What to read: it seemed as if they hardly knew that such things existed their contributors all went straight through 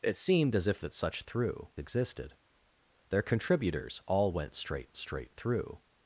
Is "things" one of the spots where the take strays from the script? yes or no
yes